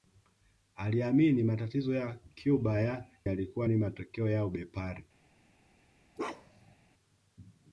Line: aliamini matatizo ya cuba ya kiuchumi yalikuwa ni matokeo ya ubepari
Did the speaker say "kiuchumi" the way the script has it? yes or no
no